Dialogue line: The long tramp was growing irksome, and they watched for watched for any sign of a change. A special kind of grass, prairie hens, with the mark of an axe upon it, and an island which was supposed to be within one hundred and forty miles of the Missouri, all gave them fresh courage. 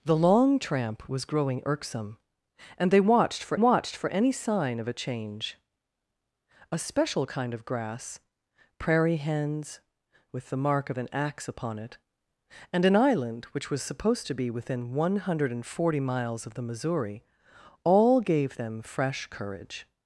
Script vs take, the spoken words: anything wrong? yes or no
no